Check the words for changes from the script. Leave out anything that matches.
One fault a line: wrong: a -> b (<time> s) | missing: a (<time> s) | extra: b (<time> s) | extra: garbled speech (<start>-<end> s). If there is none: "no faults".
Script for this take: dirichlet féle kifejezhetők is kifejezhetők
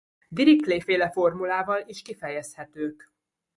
wrong: kifejezhetők -> formulával (1.1 s)